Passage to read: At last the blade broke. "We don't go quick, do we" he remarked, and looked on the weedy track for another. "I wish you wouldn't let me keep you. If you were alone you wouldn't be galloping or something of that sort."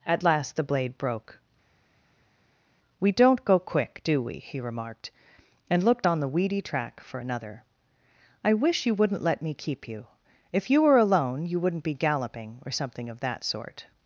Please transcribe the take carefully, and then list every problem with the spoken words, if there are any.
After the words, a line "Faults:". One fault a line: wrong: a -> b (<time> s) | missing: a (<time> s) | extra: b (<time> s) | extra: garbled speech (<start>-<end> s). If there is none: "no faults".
At last the blade broke. "We don't go quick, do we" he remarked, and looked on the weedy track for another. "I wish you wouldn't let me keep you. If you were alone you wouldn't be galloping or something of that sort."
Faults:
no faults